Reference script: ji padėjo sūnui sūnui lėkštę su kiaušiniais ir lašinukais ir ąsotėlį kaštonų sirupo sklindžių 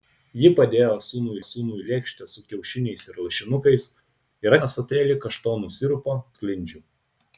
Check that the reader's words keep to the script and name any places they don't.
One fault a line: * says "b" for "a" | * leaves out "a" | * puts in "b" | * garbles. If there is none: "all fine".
all fine